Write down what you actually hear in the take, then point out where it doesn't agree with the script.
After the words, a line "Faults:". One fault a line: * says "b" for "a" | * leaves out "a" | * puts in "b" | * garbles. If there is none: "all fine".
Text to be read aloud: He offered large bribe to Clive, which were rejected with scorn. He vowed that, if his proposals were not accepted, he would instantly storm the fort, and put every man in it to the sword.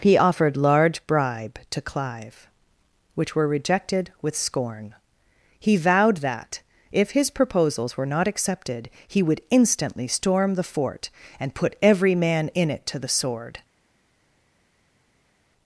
He offered large bribe to Clive, which were rejected with scorn. He vowed that, if his proposals were not accepted, he would instantly storm the fort, and put every man in it to the sword.
Faults:
all fine